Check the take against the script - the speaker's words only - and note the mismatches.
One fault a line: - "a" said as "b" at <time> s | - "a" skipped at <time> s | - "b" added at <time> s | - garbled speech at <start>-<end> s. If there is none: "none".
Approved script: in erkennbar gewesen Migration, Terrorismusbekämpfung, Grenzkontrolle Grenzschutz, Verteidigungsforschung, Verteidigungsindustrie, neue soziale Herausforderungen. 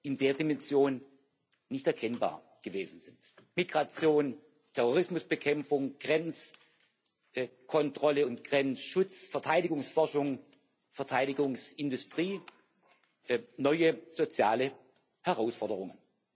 - "der Dimension nicht" added at 0.2 s
- "sind" added at 3.0 s
- "und" added at 8.2 s